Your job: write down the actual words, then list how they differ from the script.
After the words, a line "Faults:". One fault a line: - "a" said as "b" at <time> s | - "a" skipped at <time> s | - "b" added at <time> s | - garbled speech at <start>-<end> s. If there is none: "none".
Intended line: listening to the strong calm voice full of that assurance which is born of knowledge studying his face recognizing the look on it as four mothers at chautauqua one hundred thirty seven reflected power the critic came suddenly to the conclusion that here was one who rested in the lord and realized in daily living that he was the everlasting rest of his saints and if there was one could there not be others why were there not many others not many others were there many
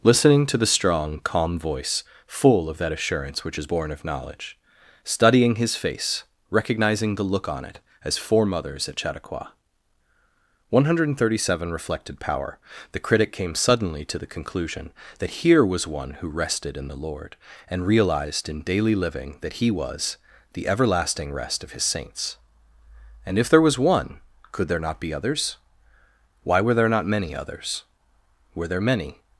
listening to the strong calm voice full of that assurance which is born of knowledge studying his face recognizing the look on it as four mothers at chautauqua one hundred thirty seven reflected power the critic came suddenly to the conclusion that here was one who rested in the lord and realized in daily living that he was the everlasting rest of his saints and if there was one could there not be others why were there not many others were there many
Faults:
- "not many others" skipped at 27.8 s